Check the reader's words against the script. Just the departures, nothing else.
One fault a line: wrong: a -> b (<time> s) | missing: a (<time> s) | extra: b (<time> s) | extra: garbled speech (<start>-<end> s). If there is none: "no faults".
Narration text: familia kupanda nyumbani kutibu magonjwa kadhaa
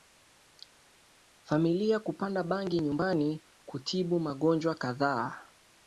extra: bangi (2.4 s)